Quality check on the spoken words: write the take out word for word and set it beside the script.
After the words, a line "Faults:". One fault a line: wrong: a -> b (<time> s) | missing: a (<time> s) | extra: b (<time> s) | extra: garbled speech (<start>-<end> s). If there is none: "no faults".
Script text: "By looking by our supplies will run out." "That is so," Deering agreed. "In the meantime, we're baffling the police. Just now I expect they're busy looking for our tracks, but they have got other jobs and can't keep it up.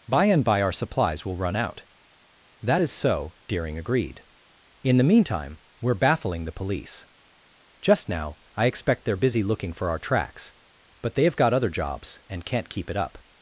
"By and by our supplies will run out." "That is so," Deering agreed. "In the meantime, we're baffling the police. Just now I expect they're busy looking for our tracks, but they have got other jobs and can't keep it up.
Faults:
wrong: looking -> and (0.2 s)